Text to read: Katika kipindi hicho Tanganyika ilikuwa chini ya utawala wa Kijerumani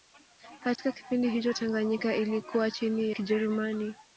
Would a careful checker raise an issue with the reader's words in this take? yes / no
yes